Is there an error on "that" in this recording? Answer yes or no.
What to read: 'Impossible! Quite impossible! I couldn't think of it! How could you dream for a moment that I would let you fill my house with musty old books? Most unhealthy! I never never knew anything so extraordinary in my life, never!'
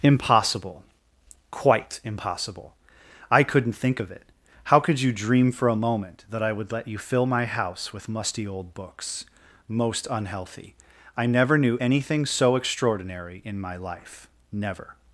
no